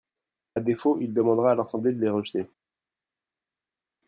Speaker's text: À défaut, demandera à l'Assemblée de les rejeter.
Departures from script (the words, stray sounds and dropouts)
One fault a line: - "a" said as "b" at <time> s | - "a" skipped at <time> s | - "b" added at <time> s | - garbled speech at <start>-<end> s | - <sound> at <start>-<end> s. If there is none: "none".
- "il" added at 1.0 s